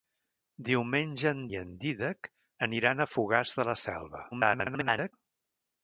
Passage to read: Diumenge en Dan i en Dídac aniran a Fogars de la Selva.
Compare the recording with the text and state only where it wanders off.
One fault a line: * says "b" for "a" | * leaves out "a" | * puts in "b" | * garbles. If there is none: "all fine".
* leaves out "Dan"
* garbles